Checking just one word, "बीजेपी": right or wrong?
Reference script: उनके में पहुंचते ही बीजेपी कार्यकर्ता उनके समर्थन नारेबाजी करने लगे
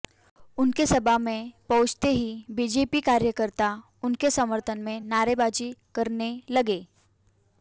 right